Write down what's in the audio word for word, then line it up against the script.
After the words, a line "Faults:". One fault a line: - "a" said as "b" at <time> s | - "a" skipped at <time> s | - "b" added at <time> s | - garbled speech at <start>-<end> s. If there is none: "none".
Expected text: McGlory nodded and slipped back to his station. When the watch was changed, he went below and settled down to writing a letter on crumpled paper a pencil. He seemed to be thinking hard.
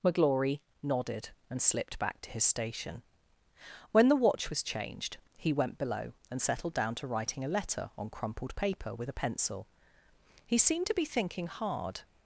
McGlory nodded and slipped back to his station. When the watch was changed, he went below and settled down to writing a letter on crumpled paper with a pencil. He seemed to be thinking hard.
Faults:
- "with" added at 8.9 s